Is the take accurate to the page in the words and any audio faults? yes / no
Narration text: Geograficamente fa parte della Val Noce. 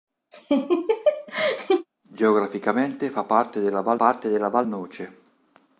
no